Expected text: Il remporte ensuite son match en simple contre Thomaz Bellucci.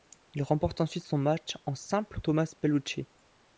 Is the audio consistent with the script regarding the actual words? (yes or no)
no